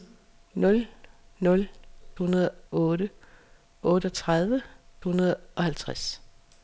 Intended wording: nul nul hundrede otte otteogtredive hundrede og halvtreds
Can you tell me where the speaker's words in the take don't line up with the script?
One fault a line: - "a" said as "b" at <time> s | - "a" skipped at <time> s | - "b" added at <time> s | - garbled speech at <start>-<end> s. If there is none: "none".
none